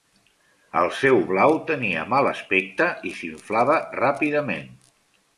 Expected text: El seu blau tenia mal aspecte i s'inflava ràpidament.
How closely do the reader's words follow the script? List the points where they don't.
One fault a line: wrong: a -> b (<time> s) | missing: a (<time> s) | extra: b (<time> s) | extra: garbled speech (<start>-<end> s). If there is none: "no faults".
no faults